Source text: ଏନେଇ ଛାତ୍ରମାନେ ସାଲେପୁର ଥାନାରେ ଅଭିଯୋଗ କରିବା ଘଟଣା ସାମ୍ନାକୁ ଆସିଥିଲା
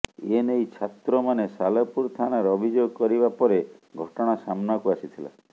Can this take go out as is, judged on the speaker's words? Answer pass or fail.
fail